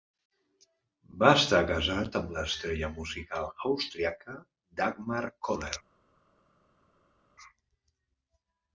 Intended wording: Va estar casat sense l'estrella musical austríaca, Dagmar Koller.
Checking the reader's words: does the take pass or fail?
fail